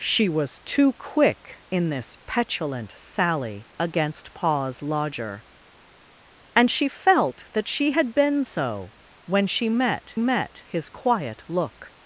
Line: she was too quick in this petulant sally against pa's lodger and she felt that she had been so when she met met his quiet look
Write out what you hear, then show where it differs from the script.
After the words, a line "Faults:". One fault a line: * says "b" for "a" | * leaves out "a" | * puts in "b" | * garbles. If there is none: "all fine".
she was too quick in this petulant sally against pa's lodger and she felt that she had been so when she met met his quiet look
Faults:
all fine